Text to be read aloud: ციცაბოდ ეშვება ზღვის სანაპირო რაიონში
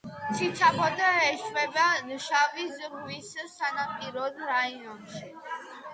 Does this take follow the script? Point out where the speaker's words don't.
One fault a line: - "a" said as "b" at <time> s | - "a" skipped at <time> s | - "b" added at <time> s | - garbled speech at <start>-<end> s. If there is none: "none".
- "შავი" added at 2.3 s